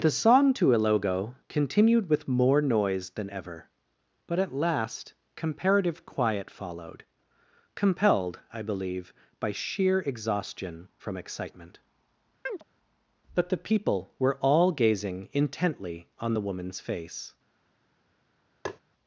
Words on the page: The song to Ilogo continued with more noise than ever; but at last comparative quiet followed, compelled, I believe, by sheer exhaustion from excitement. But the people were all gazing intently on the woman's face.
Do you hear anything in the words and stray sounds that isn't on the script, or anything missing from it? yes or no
yes